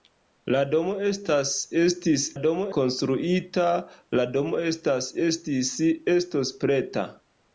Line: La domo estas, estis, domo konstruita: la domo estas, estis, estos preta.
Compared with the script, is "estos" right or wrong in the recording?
right